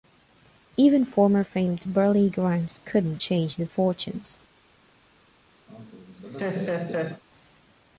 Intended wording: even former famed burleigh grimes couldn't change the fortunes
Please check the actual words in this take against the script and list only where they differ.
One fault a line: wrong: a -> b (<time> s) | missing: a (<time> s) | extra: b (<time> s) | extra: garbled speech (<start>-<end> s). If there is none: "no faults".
no faults